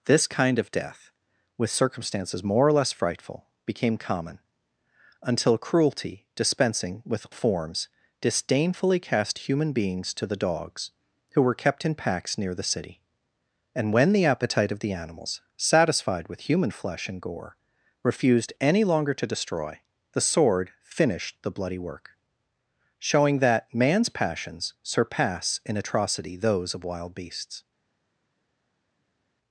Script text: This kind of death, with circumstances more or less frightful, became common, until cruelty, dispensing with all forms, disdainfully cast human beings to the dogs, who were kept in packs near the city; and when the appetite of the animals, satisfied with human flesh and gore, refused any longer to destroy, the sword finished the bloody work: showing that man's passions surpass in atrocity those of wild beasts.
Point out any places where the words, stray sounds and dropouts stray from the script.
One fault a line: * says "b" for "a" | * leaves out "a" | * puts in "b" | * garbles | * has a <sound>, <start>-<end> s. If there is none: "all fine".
* leaves out "all"